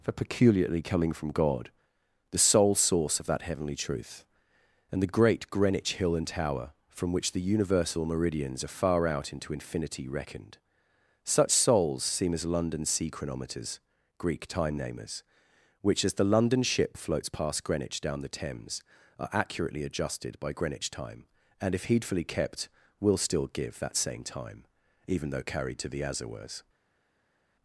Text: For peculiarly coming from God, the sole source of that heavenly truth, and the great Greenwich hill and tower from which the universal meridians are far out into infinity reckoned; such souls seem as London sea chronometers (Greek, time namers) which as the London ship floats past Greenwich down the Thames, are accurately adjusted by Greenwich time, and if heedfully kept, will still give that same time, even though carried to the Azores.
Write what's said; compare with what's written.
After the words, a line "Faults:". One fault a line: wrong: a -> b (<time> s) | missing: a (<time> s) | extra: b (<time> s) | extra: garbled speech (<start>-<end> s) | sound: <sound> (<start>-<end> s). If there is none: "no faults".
For peculiarly coming from God, the sole source of that heavenly truth, and the great Greenwich hill and tower from which the universal meridians are far out into infinity reckoned; such souls seem as London sea chronometers (Greek, time namers) which as the London ship floats past Greenwich down the Thames, are accurately adjusted by Greenwich time, and if heedfully kept, will still give that same time, even though carried to the Azores.
Faults:
no faults